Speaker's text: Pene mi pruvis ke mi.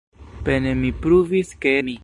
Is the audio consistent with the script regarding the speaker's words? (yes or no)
yes